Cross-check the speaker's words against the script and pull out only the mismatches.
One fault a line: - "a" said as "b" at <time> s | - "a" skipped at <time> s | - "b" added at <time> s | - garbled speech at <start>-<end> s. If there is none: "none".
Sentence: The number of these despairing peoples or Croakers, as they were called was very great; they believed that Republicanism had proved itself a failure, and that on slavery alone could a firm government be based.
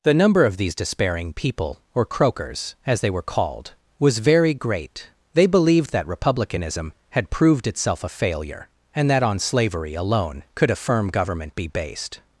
- "peoples" said as "people" at 1.3 s